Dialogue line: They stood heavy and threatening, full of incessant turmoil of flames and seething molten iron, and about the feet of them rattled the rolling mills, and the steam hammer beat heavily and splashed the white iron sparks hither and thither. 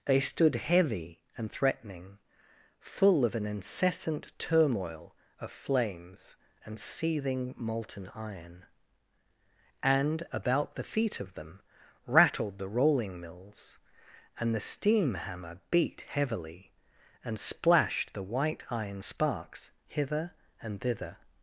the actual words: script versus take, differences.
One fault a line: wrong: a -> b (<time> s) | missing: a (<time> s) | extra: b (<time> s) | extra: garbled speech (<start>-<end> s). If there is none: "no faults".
extra: an (3.4 s)